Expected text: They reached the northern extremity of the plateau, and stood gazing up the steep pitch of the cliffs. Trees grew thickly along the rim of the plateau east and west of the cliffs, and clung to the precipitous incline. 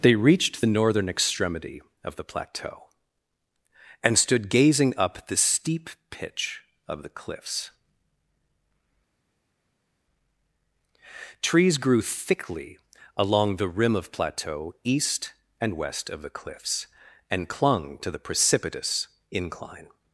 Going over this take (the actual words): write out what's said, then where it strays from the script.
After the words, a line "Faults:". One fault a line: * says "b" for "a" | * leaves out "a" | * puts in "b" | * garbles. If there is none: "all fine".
They reached the northern extremity of the plateau, and stood gazing up the steep pitch of the cliffs. Trees grew thickly along the rim of plateau east and west of the cliffs, and clung to the precipitous incline.
Faults:
* leaves out "the"